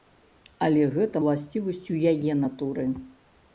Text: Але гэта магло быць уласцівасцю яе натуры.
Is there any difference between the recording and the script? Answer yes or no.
yes